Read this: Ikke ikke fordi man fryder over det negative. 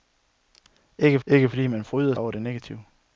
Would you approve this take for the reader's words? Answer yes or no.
yes